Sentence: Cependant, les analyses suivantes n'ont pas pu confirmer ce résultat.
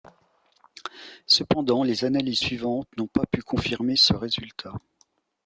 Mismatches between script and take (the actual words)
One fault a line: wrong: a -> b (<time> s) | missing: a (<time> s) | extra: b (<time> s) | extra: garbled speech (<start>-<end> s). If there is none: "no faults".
no faults